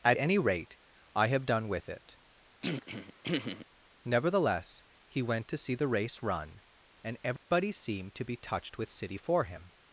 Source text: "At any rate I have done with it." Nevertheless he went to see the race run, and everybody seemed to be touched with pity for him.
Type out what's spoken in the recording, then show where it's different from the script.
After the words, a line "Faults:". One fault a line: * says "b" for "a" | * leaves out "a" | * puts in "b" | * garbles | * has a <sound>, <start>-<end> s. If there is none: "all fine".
"At any rate I have done with it." Nevertheless he went to see the race run, and everybody seemed to be touched with city for him.
Faults:
* has a throat clearing, 2.6-3.7 s
* has a dropout, 7.4-7.5 s
* says "city" for "pity"